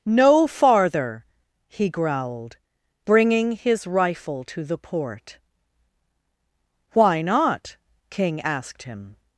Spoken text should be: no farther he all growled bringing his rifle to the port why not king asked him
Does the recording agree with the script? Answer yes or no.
no